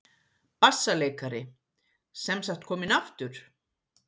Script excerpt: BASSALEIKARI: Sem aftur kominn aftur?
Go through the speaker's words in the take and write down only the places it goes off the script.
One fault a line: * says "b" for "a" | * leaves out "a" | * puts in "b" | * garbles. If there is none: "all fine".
* says "sagt" for "aftur"